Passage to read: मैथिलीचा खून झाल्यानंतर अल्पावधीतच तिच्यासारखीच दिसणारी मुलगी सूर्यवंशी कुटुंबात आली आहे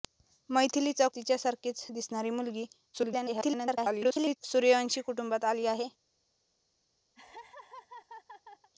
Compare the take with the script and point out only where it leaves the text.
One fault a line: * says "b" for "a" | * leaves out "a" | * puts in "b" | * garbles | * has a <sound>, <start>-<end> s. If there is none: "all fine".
* leaves out "खून झाल्यानंतर अल्पावधीतच"
* garbles
* has a laugh, 7.1-8.7 s